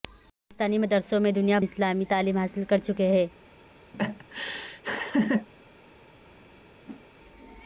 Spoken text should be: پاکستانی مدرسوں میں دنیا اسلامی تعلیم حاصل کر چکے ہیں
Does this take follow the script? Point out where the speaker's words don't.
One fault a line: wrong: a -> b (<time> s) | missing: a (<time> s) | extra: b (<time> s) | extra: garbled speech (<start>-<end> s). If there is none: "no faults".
no faults